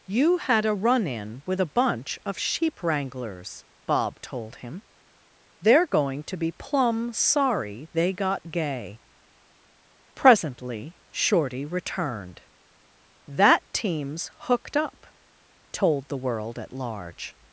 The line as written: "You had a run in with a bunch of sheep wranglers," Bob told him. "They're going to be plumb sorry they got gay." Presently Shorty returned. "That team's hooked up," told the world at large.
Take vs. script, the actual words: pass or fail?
pass